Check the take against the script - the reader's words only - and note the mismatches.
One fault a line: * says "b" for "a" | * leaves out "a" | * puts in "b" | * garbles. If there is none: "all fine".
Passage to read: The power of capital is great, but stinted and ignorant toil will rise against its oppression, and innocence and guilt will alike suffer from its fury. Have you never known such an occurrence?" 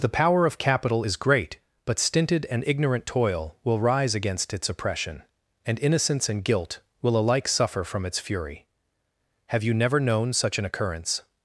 all fine